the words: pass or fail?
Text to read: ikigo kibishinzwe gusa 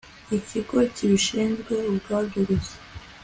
fail